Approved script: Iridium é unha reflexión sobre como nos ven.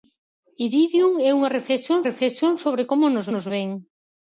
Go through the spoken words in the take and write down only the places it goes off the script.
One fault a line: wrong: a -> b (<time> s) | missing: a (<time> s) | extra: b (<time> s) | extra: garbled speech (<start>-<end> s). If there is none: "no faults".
extra: reflexión (2.1 s)
extra: nos (3.3 s)